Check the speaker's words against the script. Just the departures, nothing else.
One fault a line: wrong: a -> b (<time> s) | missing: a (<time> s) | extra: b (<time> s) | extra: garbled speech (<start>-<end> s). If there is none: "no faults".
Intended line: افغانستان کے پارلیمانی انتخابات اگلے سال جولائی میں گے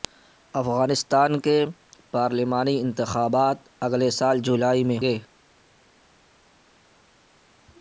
no faults